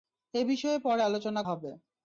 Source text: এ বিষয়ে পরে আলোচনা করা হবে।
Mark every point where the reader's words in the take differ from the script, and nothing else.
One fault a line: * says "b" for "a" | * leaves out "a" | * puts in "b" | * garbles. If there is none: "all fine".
* leaves out "করা"